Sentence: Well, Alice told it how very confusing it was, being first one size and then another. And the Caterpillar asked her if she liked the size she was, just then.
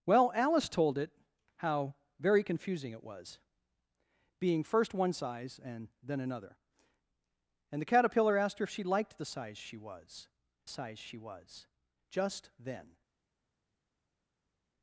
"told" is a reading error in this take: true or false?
false